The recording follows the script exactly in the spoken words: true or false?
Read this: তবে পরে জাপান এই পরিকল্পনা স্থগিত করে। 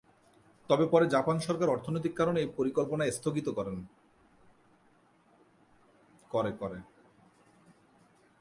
false